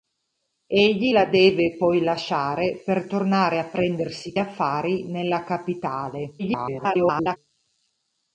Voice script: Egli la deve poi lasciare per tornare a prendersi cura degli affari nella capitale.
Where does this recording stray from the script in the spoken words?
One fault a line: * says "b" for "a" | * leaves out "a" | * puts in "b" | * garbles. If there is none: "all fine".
* leaves out "cura degli"
* garbles